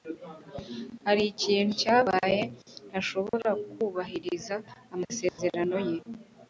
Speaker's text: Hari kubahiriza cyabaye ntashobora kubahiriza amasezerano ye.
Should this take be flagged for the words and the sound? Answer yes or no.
yes